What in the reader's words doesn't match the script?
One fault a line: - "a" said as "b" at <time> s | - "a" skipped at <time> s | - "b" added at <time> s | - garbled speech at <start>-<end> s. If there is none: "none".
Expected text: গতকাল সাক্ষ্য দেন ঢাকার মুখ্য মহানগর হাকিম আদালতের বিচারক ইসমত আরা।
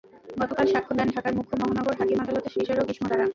none